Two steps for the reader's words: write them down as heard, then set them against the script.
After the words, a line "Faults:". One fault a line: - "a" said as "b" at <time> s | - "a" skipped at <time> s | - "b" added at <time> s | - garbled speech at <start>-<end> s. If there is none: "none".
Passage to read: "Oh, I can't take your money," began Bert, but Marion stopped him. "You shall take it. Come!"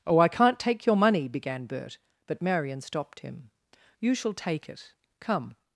"Oh, I can't take your money," began Bert, but Marion stopped him. "You shall take it. Come!"
Faults:
none